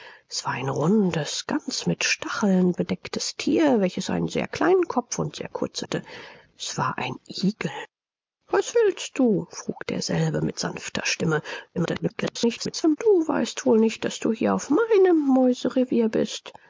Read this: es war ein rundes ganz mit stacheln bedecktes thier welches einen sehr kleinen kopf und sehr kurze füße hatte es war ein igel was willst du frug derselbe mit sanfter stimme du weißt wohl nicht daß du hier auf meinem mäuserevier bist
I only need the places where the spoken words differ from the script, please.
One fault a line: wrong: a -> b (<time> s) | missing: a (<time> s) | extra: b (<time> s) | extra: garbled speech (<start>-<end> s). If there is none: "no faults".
missing: füße (5.8 s)
extra: garbled speech (11.7-13.0 s)